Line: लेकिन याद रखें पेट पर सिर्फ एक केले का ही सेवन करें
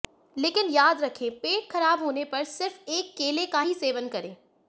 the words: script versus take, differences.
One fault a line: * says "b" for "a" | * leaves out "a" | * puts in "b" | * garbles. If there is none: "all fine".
* puts in "खराब होने"